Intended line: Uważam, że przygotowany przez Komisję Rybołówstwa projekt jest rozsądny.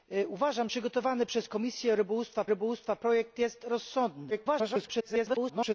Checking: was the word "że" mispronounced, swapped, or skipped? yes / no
yes